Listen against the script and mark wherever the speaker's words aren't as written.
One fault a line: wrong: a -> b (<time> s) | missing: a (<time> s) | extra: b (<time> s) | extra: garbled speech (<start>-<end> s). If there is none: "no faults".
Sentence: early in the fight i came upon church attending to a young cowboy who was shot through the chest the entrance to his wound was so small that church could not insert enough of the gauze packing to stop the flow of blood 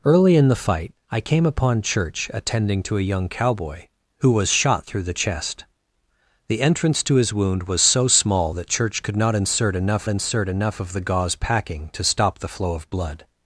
extra: insert enough (10.1 s)